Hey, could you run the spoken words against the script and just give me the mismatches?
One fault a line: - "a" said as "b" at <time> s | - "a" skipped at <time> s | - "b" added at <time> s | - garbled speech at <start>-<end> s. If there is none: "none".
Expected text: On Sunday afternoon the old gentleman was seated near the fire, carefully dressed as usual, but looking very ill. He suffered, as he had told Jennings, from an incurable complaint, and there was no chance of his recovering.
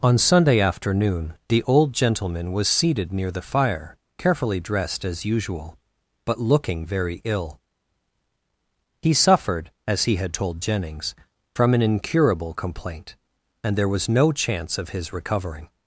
none